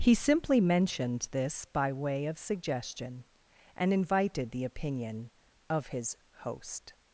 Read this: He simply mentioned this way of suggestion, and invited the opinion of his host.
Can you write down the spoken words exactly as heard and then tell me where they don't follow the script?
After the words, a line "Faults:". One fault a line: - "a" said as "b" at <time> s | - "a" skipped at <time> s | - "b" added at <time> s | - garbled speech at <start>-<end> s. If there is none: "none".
He simply mentioned this by way of suggestion, and invited the opinion of his host.
Faults:
- "by" added at 1.6 s